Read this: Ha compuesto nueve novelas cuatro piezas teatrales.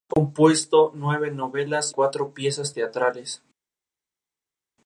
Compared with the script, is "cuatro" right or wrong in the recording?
right